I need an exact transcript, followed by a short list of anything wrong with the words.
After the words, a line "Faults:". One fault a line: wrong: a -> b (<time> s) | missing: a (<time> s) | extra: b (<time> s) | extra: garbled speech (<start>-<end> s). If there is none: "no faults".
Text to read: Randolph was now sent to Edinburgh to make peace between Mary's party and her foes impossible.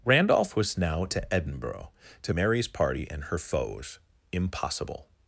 Randolph was now to Edinburgh to Mary's party and her foes impossible.
Faults:
missing: sent (1.1 s)
missing: make peace between (2.3 s)